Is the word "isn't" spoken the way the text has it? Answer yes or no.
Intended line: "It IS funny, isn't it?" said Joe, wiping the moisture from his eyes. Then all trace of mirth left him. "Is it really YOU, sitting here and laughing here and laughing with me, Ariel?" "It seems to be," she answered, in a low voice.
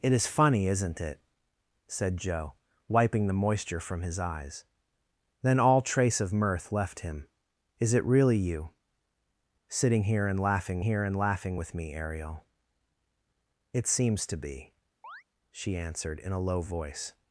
yes